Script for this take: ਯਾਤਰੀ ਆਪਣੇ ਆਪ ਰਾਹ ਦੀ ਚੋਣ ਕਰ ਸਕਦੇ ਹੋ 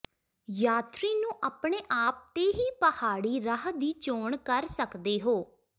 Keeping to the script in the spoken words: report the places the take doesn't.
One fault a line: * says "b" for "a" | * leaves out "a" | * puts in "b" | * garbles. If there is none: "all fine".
* puts in "ਨੂੰ"
* puts in "ਤੇ ਹੀ ਪਹਾੜੀ"